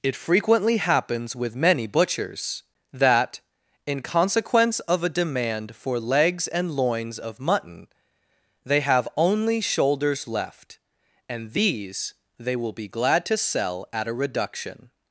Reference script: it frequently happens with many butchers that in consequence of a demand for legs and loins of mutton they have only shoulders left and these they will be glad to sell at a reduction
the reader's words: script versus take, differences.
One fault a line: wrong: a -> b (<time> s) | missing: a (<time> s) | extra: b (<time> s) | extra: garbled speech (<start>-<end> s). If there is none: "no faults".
no faults